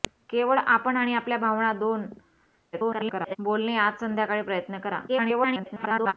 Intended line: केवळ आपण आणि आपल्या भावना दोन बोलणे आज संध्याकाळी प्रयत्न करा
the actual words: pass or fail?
fail